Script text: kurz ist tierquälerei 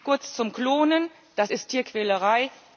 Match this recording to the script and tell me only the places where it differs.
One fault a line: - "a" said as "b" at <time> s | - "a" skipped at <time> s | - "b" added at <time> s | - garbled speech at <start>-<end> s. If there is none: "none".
- "zum klonen das" added at 0.3 s